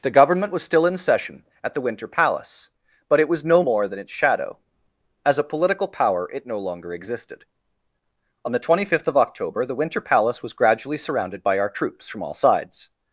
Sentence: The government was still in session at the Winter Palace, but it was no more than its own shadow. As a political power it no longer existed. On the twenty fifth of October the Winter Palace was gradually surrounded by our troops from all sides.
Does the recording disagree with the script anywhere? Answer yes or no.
yes